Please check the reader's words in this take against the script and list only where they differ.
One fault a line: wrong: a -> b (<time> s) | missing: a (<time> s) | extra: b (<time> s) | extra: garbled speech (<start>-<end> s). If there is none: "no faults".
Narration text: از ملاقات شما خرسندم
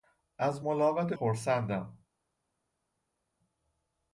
missing: شما (1.1 s)